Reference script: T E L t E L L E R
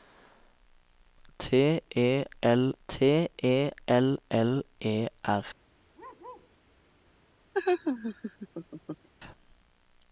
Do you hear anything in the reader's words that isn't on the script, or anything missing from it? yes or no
no